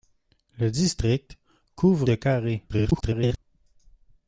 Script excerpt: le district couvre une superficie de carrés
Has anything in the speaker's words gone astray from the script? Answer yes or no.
yes